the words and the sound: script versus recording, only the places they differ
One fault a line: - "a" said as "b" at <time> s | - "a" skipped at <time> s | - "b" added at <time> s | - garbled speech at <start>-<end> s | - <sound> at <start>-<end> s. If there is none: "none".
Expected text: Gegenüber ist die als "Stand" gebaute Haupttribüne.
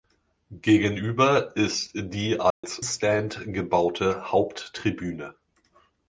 - dropout at 2.5-2.6 s